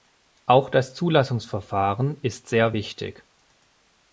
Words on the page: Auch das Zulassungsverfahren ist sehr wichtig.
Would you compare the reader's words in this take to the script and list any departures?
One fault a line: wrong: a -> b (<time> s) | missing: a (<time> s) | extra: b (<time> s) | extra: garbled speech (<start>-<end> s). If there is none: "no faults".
no faults